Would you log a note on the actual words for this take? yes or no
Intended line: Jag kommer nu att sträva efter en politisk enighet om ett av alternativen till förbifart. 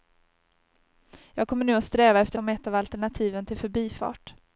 yes